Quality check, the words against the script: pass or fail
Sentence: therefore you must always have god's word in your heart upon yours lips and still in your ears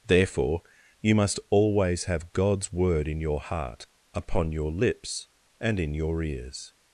fail